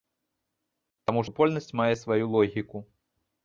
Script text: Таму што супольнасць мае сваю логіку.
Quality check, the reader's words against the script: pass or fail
fail